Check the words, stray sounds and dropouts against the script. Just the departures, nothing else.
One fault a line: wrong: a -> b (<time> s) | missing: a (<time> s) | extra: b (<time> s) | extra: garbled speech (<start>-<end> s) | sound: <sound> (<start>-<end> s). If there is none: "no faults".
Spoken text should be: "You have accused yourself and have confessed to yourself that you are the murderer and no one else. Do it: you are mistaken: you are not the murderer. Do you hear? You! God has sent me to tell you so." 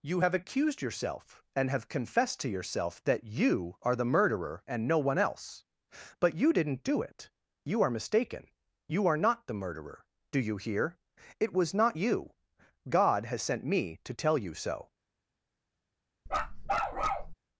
extra: But you didn't (6.2 s)
extra: It was not (11.4 s)
sound: bark (16.3-17.3 s)